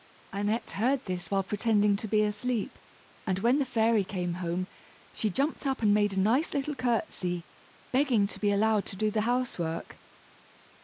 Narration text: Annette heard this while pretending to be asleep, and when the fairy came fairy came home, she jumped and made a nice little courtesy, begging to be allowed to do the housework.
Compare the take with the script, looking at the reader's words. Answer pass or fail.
fail